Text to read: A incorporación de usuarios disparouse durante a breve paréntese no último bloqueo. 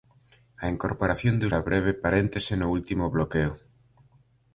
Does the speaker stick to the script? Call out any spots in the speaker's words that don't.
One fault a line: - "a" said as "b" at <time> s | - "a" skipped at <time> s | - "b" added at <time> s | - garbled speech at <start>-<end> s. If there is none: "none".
- "usuarios disparouse durante" skipped at 1.4 s